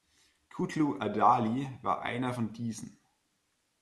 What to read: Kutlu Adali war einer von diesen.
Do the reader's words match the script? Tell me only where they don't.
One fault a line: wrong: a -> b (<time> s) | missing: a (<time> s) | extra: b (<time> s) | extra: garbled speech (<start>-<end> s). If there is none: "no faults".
no faults